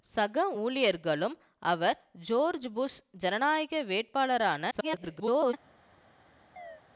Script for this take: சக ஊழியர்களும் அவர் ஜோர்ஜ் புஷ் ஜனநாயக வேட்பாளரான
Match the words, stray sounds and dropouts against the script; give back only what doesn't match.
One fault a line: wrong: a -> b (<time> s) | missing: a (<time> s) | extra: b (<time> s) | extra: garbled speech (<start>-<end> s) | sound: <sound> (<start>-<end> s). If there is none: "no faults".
extra: garbled speech (4.7-5.5 s)
sound: chirp (6.6-6.8 s)